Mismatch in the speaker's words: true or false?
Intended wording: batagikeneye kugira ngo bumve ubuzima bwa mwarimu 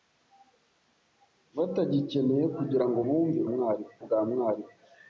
true